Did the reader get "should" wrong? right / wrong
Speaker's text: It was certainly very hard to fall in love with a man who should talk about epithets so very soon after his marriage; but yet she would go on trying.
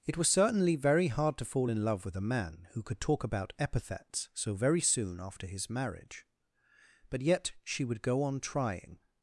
wrong